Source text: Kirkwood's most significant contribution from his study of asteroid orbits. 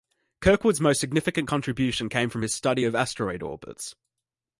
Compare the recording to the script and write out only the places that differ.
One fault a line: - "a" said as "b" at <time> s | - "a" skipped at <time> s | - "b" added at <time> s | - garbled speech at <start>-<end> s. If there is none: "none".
- "came" added at 2.1 s